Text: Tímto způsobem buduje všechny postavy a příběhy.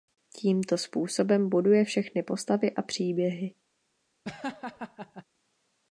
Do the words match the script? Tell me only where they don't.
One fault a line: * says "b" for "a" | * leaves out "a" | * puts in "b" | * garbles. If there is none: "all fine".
all fine